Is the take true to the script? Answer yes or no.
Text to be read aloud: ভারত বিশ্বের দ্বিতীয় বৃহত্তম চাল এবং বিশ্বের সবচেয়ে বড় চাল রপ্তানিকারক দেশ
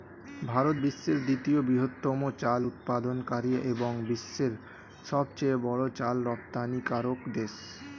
no